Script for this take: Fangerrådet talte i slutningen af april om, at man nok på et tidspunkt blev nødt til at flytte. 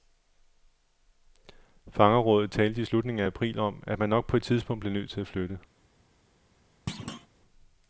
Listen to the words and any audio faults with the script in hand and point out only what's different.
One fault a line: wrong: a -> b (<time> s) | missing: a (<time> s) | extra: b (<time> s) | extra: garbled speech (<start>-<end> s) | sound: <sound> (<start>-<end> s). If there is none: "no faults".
sound: thud (6.9-7.3 s)